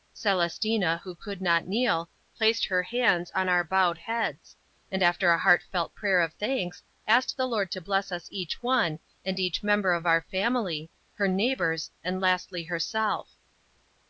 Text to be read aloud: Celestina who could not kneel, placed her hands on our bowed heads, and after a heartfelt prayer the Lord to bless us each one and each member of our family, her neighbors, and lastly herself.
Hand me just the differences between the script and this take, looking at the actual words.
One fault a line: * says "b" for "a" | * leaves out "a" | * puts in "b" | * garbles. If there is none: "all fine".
* puts in "of thanks asked"